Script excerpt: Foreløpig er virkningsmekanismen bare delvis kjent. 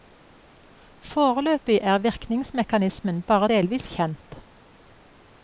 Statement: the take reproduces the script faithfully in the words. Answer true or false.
true